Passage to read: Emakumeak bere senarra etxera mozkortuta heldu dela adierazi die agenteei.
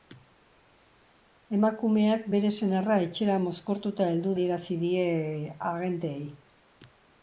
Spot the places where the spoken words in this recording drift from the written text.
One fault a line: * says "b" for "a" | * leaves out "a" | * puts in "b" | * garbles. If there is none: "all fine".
* leaves out "dela"